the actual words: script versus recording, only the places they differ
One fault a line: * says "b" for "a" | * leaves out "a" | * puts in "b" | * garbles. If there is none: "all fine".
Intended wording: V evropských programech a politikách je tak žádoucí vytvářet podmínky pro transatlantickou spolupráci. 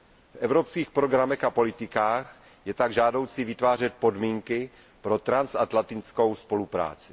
all fine